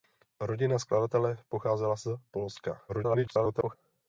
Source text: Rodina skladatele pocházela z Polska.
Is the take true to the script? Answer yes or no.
no